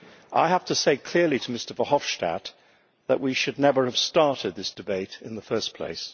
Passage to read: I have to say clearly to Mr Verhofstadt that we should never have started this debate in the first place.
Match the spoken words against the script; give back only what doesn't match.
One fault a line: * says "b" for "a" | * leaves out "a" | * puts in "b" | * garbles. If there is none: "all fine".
all fine